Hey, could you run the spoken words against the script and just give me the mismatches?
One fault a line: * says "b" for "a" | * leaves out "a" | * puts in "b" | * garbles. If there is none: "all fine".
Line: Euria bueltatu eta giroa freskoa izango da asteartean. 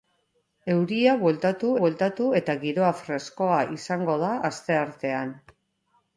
* puts in "bueltatu"